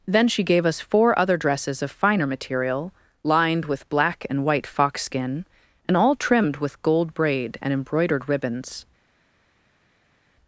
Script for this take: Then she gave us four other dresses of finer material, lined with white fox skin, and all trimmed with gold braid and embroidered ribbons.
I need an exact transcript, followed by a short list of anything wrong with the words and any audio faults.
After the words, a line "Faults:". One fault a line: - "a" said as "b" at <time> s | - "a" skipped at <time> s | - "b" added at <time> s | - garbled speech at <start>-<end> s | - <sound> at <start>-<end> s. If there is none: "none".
Then she gave us four other dresses of finer material, lined with black and white fox skin, and all trimmed with gold braid and embroidered ribbons.
Faults:
- "black and" added at 3.9 s